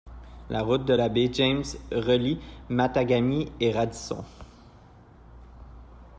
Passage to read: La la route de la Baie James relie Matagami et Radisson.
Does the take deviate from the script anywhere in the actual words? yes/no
yes